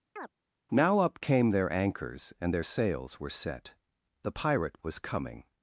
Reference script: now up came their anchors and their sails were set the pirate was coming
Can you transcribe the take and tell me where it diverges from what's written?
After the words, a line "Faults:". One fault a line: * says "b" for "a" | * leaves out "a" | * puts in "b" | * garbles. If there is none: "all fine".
now up came their anchors and their sails were set the pirate was coming
Faults:
all fine